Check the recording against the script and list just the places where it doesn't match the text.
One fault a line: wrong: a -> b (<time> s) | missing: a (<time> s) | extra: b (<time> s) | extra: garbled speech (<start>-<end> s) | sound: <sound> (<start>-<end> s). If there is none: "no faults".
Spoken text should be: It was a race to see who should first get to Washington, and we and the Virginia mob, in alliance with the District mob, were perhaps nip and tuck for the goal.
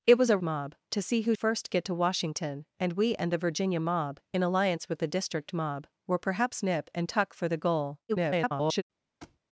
wrong: race -> mob (0.4 s)
missing: should (1.3 s)
extra: garbled speech (8.1-8.8 s)
sound: thud (9.2-9.4 s)